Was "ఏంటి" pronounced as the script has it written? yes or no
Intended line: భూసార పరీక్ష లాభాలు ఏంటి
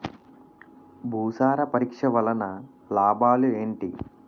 yes